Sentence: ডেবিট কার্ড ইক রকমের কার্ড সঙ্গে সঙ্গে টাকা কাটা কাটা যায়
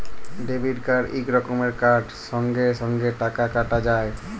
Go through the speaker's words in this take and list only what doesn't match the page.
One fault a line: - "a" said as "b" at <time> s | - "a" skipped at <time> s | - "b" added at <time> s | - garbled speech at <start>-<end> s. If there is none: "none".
- "কাটা" skipped at 3.8 s